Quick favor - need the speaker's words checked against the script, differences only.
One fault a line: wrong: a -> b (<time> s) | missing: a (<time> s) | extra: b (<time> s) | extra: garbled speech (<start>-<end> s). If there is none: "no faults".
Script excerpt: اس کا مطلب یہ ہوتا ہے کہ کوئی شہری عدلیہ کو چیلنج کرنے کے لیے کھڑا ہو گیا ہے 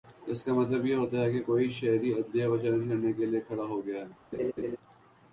no faults